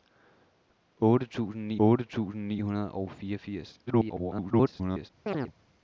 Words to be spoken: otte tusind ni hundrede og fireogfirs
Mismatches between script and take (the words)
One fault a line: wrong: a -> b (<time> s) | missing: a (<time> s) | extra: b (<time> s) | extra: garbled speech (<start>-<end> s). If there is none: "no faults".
extra: otte tusind ni (1.9 s)
extra: garbled speech (3.9-5.1 s)